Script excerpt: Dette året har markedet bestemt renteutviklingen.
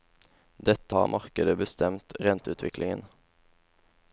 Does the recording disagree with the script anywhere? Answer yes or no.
yes